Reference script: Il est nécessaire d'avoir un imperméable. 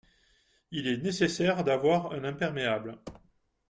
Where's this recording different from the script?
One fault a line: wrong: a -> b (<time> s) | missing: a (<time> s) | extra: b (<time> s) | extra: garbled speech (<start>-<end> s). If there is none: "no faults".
no faults